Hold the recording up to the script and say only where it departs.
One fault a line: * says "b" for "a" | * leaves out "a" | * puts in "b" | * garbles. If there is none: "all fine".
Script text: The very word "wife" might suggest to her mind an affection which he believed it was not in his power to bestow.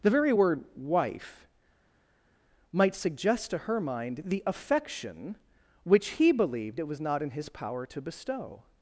* says "the" for "an"